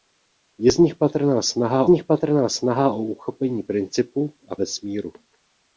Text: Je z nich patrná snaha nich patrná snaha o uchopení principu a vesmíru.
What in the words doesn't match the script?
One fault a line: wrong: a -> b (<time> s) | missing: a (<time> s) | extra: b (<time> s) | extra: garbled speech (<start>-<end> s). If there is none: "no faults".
no faults